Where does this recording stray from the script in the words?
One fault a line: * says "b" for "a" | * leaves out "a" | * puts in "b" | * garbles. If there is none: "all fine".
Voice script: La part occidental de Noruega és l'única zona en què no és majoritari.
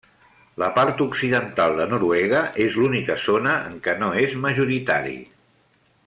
all fine